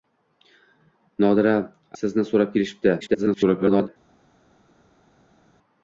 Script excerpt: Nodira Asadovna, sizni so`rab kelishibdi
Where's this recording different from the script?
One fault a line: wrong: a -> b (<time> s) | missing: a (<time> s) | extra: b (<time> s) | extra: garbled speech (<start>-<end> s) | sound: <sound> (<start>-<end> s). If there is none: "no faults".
missing: Asadovna (1.5 s)
extra: garbled speech (3.0-3.9 s)